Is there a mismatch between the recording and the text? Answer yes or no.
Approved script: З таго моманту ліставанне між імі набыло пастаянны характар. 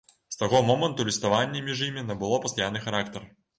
no